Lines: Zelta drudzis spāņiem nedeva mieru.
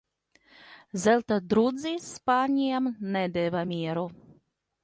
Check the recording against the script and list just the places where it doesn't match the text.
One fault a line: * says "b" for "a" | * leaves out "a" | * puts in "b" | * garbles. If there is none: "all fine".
all fine